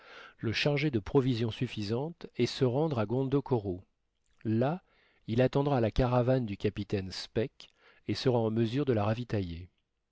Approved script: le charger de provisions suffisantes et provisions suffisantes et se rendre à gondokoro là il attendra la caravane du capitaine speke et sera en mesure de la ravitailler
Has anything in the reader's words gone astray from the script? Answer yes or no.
yes